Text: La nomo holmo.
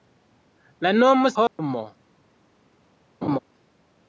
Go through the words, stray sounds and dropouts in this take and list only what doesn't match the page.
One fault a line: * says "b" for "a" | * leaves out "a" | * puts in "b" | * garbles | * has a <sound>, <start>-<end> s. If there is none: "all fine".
* has a dropout, 1.5-1.6 s
* has a laugh, 3.2-3.4 s